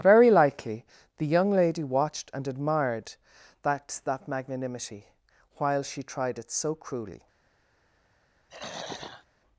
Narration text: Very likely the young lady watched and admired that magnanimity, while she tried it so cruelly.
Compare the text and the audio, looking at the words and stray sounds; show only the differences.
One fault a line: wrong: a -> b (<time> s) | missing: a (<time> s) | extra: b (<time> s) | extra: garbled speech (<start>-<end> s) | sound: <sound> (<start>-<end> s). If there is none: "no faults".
extra: that (4.0 s)
sound: throat clearing (8.5-9.3 s)